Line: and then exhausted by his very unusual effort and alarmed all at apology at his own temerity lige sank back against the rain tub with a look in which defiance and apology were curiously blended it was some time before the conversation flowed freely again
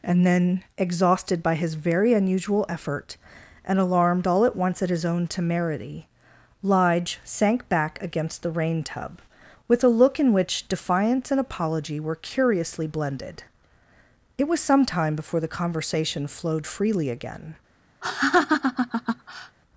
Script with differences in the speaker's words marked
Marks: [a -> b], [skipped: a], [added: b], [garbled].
and then exhausted by his very unusual effort and alarmed all at [apology -> once] at his own temerity lige sank back against the rain tub with a look in which defiance and apology were curiously blended it was some time before the conversation flowed freely again